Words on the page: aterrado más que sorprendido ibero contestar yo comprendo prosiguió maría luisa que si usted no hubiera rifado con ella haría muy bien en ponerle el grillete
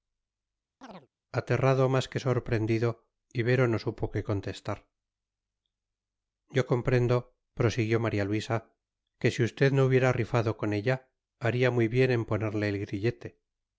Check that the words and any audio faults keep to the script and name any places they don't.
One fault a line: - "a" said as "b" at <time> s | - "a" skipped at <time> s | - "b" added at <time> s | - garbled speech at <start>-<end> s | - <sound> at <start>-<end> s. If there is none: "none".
- chirp at 0.8-1.1 s
- "no supo qué" added at 3.7 s